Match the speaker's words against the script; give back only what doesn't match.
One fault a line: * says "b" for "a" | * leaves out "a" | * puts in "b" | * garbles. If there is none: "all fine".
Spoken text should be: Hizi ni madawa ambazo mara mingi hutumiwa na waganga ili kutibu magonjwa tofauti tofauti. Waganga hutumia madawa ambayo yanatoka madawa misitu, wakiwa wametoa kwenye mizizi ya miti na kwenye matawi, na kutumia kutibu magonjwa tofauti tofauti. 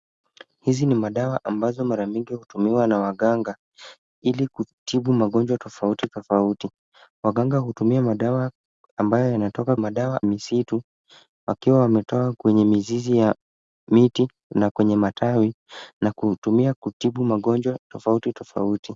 all fine